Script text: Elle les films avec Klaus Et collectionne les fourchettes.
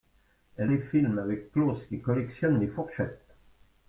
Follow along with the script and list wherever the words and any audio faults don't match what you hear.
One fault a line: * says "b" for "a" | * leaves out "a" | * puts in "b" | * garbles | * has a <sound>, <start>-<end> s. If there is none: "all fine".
all fine